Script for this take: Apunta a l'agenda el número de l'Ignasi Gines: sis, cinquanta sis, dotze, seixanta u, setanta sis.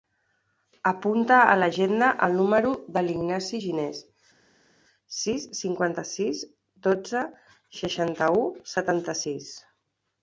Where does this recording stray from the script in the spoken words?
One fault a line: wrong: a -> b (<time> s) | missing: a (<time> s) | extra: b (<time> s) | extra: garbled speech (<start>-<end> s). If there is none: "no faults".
no faults